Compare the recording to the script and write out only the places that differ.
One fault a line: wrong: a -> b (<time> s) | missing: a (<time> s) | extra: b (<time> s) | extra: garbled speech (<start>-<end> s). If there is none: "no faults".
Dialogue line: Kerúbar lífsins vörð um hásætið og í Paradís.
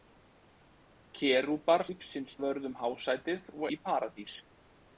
no faults